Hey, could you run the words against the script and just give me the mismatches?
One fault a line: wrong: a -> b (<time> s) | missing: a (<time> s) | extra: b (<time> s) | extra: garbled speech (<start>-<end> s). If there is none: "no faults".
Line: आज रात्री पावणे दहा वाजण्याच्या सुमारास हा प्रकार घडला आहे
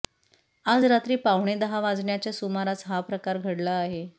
no faults